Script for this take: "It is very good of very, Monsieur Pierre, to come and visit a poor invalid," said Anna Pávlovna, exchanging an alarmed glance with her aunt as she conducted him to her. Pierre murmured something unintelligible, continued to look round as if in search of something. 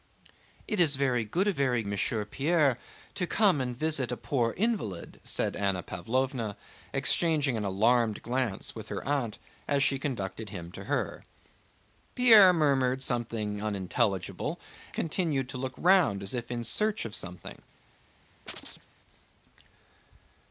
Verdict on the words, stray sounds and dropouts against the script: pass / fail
fail